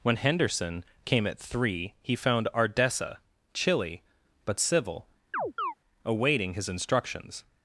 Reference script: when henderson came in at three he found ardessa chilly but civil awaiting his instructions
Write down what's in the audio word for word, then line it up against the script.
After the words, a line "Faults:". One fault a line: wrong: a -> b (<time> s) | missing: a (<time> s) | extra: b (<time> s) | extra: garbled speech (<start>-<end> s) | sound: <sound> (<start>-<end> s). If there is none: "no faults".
when henderson came at three he found ardessa chilly but civil awaiting his instructions
Faults:
missing: in (1.3 s)
sound: chirp (5.3-5.7 s)